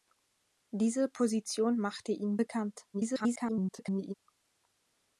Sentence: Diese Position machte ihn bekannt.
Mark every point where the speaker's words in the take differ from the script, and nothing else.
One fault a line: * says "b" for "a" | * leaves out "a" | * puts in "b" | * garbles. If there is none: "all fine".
* garbles